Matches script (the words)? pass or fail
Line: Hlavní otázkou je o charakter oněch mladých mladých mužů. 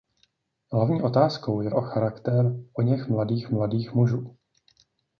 pass